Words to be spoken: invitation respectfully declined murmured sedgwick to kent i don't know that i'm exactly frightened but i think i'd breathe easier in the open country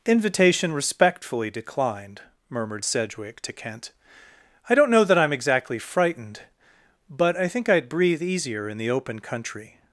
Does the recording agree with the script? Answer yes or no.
yes